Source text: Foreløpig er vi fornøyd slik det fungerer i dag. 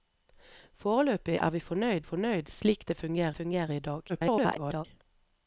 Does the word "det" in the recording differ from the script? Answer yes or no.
no